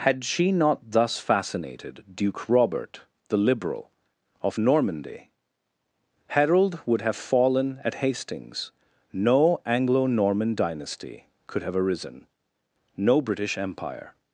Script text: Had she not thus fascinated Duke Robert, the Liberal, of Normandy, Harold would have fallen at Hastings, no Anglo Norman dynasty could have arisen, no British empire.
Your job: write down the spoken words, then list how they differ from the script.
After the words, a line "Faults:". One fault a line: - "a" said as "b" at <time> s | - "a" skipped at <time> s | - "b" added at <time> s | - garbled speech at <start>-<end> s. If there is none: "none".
Had she not thus fascinated Duke Robert, the Liberal, of Normandy, Harold would have fallen at Hastings, no Anglo Norman dynasty could have arisen, no British empire.
Faults:
none